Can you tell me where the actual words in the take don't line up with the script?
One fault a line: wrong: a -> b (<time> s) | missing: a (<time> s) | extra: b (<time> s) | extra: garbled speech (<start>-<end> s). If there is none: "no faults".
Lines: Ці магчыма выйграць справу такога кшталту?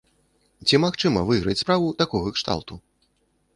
no faults